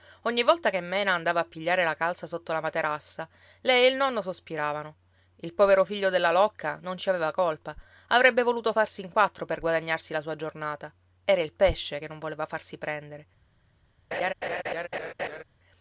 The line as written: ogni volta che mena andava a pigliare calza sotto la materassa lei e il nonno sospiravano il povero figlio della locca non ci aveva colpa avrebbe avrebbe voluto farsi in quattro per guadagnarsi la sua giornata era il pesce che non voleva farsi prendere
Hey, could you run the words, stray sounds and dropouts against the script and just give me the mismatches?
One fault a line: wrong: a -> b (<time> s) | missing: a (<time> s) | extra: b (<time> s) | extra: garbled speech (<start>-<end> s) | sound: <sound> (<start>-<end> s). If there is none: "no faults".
extra: la (1.8 s)
missing: avrebbe (8.4 s)
sound: laugh (14.1-15.4 s)